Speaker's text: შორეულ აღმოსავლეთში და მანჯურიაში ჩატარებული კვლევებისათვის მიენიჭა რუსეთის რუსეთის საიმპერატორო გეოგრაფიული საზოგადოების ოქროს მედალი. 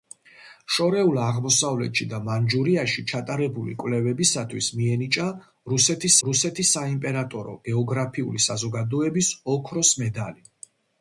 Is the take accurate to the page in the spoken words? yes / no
yes